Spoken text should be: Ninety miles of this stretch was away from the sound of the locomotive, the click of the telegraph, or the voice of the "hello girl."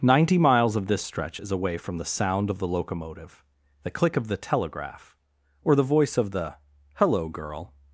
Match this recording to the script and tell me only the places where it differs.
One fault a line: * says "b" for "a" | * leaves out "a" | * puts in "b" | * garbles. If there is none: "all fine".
* says "is" for "was"